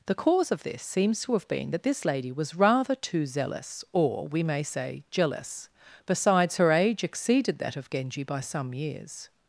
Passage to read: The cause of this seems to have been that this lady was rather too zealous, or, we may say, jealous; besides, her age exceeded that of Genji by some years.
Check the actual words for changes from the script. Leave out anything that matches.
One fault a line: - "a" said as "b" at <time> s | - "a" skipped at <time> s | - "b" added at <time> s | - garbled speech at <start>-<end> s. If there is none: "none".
none